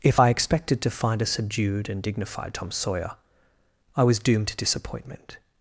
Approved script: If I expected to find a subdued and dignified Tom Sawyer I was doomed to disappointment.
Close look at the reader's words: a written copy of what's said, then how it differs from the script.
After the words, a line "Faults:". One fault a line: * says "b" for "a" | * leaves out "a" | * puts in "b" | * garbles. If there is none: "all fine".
If I expected to find a subdued and dignified Tom Sawyer I was doomed to disappointment.
Faults:
all fine